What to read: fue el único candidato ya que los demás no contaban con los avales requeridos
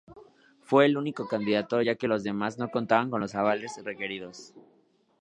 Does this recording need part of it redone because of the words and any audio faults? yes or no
no